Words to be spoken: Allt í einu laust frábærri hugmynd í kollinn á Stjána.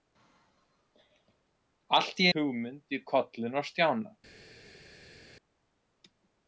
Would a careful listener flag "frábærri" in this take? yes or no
yes